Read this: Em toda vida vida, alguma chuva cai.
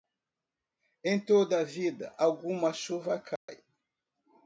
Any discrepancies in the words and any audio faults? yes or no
yes